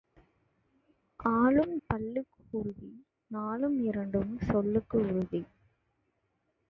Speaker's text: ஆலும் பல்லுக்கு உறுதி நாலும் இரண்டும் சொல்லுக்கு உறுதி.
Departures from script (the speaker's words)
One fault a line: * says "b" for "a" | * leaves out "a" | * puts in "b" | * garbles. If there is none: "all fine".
all fine